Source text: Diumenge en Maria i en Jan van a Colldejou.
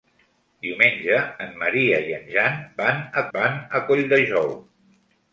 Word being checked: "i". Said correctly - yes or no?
yes